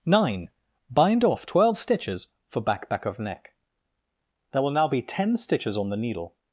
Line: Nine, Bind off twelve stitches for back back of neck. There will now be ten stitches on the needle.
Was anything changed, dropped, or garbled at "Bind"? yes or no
no